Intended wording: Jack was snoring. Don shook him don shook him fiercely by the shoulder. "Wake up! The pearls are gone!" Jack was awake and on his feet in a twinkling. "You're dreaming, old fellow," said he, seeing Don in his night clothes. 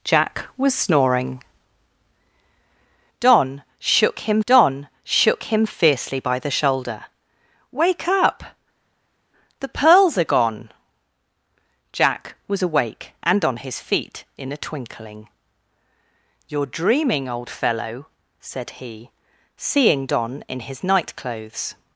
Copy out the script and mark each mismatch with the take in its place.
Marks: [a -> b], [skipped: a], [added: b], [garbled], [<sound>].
Jack was snoring. Don shook him don shook him fiercely by the shoulder. "Wake up! The pearls are gone!" Jack was awake and on his feet in a twinkling. "You're dreaming, old fellow," said he, seeing Don in his night clothes.